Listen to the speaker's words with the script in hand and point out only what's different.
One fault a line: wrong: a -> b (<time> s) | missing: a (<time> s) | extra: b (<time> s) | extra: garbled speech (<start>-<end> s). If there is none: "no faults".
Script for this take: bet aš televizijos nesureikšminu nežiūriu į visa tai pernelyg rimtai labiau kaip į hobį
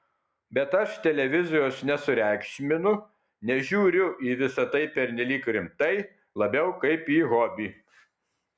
no faults